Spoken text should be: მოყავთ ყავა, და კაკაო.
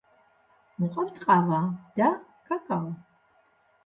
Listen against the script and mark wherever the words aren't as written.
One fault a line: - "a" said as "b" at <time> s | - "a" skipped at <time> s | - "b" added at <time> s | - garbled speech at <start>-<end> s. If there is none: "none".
none